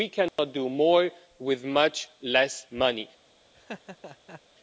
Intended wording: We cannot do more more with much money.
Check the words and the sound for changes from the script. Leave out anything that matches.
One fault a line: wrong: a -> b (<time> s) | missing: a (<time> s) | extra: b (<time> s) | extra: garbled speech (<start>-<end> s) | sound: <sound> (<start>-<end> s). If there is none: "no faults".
sound: dropout (0.3-0.4 s)
missing: more (1.1 s)
extra: less (2.2 s)
sound: laugh (3.5-4.4 s)